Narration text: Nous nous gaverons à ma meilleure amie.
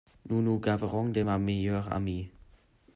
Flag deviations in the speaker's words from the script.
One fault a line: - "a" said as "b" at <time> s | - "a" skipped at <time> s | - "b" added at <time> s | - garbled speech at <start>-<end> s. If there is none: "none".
- "à" said as "de" at 1.1 s